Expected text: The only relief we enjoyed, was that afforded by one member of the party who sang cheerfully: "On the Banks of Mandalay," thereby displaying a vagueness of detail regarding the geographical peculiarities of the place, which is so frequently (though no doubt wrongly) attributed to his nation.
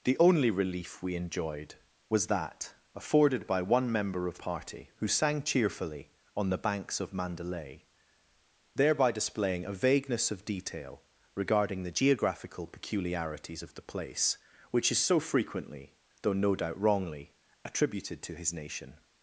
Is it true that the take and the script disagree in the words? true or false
true